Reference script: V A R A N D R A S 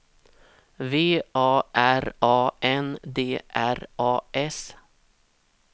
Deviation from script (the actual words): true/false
false